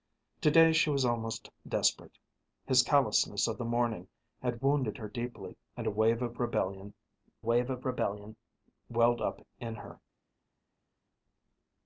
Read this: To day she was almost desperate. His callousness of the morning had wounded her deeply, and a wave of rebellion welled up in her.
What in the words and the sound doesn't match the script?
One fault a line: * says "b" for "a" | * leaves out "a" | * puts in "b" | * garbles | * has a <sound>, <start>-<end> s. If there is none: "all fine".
* puts in "wave of rebellion"